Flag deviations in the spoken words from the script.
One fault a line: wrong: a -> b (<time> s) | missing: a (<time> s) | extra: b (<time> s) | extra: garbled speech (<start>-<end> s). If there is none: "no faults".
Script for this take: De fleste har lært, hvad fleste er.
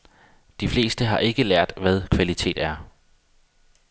extra: ikke (1.2 s)
wrong: fleste -> kvalitet (2.1 s)